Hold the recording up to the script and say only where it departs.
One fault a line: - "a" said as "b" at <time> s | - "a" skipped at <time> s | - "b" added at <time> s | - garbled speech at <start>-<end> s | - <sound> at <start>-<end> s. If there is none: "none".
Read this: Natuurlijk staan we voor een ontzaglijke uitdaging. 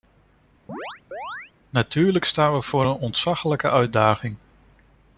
- chirp at 0.7-1.5 s